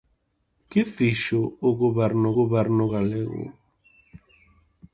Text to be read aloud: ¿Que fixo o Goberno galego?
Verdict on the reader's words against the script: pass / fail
fail